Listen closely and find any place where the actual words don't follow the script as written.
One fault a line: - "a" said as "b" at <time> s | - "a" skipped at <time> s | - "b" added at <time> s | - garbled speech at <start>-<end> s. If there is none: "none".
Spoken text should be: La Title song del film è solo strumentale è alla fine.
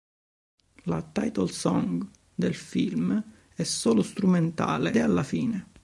none